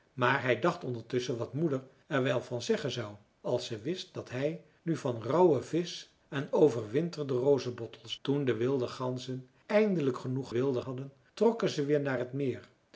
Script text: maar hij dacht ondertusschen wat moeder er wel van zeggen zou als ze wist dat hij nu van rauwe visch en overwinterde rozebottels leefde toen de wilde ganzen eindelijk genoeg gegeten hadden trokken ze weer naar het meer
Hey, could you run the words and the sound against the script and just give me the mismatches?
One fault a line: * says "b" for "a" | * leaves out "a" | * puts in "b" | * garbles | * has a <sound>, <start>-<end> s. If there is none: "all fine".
* leaves out "leefde"
* says "wilde" for "gegeten"